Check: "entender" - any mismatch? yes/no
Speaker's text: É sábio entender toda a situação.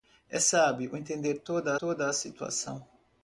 no